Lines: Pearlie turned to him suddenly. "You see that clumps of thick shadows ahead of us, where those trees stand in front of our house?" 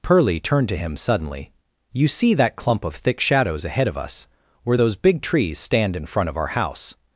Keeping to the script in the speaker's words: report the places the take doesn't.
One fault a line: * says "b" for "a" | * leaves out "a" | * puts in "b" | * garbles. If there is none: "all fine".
* says "clump" for "clumps"
* puts in "big"